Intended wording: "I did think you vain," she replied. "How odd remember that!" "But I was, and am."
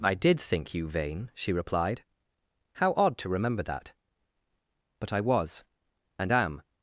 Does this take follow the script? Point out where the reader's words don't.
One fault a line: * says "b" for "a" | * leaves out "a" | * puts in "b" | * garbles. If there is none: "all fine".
* puts in "to"